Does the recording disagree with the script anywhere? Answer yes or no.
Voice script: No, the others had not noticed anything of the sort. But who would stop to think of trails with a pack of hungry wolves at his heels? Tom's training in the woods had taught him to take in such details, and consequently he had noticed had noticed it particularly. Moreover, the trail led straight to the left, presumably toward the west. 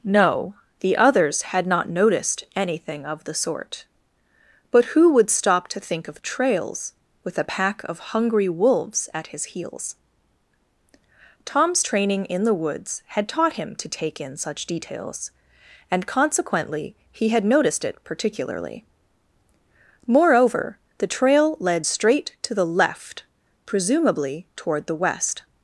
yes